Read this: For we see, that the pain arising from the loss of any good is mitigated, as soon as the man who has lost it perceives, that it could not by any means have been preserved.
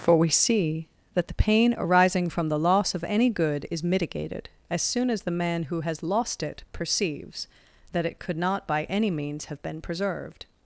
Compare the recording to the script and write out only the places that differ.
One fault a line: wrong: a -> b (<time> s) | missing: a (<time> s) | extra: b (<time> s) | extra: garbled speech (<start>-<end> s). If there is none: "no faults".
no faults